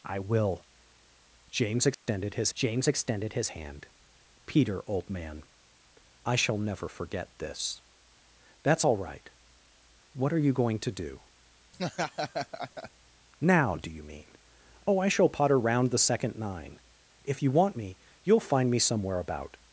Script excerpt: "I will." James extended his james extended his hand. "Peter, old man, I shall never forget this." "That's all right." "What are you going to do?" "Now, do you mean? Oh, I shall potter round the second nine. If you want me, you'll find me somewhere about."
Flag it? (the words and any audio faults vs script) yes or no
yes